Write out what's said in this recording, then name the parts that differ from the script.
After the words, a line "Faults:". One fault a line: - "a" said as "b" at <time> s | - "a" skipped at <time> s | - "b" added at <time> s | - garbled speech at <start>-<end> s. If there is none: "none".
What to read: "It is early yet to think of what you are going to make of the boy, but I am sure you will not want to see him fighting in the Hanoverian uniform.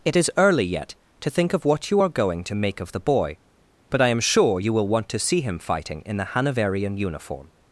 "It is early yet to think of what you are going to make of the boy, but I am sure you will want to see him fighting in the Hanoverian uniform.
Faults:
- "not" skipped at 4.9 s